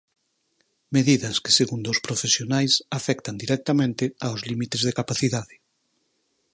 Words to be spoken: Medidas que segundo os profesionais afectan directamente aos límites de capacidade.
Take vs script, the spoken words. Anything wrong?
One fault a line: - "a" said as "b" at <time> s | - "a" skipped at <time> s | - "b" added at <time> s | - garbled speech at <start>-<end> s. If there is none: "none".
none